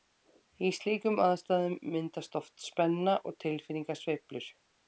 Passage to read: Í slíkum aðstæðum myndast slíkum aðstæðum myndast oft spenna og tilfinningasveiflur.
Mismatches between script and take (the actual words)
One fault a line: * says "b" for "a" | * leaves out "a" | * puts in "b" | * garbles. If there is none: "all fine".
* leaves out "slíkum aðstæðum myndast"